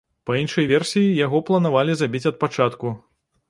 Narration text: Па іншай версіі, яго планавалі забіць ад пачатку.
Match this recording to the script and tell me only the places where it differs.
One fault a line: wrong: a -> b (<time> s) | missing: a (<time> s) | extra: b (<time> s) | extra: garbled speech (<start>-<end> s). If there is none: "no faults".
no faults